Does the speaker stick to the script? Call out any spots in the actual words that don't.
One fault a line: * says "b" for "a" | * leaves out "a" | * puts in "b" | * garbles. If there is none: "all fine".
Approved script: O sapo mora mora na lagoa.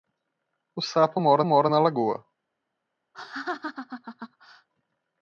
all fine